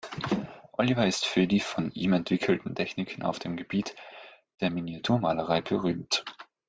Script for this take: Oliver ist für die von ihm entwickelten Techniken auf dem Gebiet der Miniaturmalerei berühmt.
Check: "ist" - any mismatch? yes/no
no